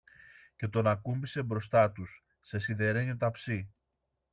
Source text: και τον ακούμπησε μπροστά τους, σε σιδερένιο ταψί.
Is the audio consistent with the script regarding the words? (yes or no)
yes